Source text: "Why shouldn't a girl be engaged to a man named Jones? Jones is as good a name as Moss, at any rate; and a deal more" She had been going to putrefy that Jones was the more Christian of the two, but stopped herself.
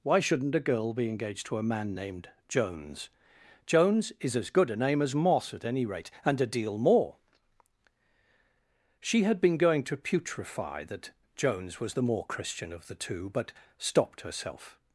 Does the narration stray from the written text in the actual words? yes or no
no